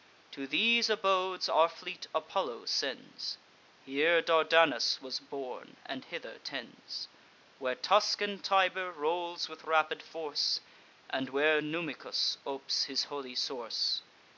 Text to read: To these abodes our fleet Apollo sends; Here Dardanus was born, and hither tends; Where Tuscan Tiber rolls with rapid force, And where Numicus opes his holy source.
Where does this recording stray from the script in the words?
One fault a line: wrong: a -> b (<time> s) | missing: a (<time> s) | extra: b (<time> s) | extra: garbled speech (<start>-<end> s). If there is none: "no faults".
no faults